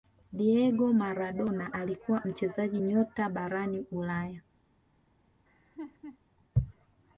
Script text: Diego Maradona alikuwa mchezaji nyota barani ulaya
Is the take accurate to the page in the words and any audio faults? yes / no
no